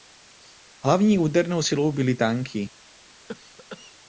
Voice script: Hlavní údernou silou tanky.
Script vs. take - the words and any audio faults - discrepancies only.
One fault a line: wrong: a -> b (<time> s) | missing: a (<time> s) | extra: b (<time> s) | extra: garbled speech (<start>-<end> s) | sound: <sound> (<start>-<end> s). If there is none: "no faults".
extra: byly (1.9 s)
sound: cough (3.3-4.0 s)